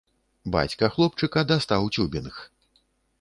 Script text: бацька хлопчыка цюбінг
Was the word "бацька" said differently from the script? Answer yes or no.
no